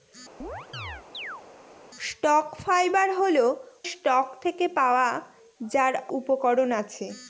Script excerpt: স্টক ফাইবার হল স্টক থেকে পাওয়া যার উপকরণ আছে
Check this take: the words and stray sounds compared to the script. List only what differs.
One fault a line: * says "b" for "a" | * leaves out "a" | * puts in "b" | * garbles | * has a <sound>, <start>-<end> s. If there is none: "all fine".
* has a chirp, 0.4-1.4 s